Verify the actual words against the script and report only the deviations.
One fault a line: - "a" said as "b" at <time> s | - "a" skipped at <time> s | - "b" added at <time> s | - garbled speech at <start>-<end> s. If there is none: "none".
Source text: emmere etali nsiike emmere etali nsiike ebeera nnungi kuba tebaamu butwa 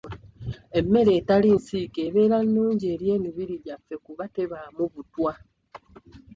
- "emmere etali nsiike ebeera nnungi" said as "ebeera nnungi eri emibiri gyaffe" at 2.1 s